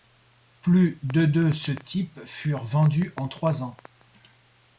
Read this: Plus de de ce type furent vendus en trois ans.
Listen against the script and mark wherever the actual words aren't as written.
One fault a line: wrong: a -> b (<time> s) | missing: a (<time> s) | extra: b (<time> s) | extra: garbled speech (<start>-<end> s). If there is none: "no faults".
no faults